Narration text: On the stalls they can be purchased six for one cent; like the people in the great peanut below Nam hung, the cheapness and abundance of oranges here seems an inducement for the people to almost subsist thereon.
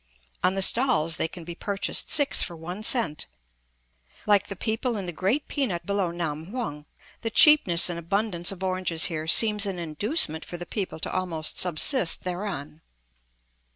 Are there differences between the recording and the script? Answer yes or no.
no